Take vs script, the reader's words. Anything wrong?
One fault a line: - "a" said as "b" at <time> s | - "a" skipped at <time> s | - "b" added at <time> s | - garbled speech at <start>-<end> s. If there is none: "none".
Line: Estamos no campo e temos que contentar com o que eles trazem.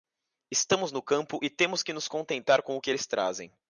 - "nos" added at 1.9 s